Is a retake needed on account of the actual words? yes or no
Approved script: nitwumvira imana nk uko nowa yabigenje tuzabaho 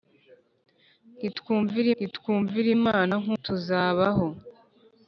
yes